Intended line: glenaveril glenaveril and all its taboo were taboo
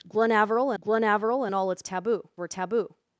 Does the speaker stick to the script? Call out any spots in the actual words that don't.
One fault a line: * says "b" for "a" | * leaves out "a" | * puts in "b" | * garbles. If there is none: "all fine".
all fine